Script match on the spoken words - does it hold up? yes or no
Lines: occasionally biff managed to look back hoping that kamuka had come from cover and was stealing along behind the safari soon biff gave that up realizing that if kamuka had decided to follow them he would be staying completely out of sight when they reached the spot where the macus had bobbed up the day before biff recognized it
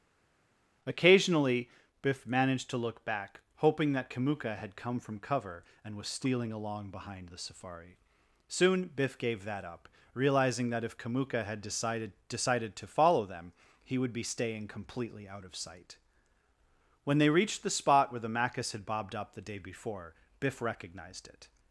no